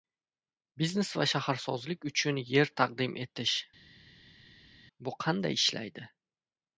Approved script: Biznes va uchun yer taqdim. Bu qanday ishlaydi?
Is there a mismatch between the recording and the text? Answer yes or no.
yes